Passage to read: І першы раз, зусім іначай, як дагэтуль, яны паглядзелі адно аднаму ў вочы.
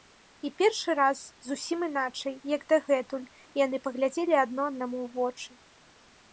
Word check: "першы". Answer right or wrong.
right